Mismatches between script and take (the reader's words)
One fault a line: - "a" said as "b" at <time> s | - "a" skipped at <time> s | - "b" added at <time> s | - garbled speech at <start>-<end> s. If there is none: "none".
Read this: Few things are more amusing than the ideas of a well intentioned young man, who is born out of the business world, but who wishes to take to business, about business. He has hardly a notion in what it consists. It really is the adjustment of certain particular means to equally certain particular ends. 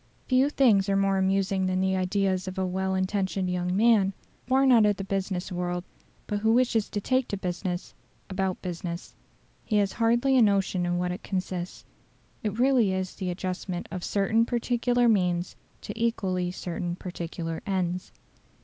- "who is" skipped at 4.1 s